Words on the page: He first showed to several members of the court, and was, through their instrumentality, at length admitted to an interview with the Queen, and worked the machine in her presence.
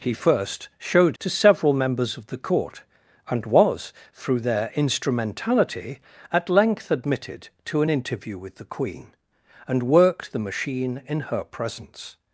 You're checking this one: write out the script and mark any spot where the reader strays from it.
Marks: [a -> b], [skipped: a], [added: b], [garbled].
He first showed to several members of the court, and was, through their instrumentality, at length admitted to an interview with the Queen, and worked the machine in her presence.